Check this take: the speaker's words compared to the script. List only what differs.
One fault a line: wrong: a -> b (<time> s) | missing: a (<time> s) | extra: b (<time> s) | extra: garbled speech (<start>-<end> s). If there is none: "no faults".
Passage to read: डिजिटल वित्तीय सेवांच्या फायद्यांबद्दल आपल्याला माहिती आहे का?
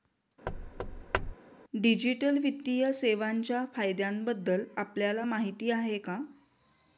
no faults